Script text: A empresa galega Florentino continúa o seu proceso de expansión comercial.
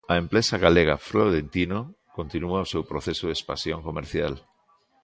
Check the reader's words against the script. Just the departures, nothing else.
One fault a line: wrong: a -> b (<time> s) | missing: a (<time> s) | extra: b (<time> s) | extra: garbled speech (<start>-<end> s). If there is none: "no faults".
no faults